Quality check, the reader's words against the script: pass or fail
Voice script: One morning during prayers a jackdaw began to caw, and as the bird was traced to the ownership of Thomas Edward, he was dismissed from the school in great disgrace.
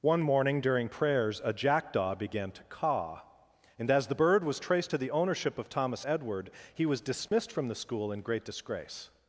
pass